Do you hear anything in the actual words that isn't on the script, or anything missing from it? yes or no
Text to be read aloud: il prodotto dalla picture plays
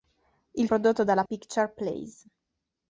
no